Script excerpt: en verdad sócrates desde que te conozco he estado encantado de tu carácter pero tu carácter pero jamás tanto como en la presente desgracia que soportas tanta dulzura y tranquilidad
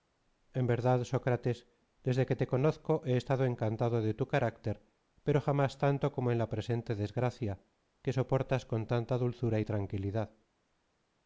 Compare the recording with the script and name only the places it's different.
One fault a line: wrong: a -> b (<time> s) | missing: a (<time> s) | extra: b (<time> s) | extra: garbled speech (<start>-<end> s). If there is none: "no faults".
missing: tu carácter pero (5.4 s)
extra: con (8.6 s)